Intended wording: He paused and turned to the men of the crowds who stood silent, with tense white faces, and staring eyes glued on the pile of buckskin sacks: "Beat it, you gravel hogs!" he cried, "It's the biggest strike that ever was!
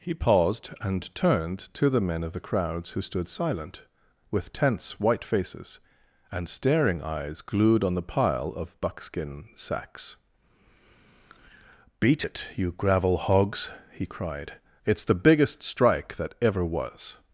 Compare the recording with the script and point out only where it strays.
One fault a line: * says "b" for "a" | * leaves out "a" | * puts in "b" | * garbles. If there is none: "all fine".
all fine